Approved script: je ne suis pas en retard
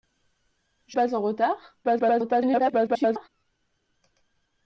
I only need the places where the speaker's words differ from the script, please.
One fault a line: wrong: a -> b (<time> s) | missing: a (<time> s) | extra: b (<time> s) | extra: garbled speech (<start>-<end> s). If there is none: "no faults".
missing: ne suis (1.0 s)
extra: garbled speech (1.8-3.3 s)